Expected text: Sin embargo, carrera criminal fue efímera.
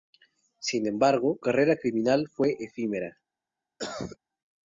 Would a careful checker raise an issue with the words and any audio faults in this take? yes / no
yes